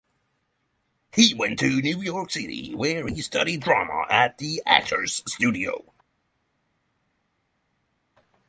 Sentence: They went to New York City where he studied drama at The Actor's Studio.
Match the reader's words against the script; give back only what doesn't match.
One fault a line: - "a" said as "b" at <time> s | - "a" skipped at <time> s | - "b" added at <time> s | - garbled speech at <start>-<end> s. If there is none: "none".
- "They" said as "He" at 1.1 s